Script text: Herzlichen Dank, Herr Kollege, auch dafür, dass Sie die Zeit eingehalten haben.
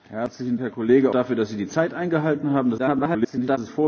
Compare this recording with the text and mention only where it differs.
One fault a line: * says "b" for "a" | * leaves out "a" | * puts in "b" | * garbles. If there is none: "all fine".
* leaves out "Dank"
* leaves out "auch"
* garbles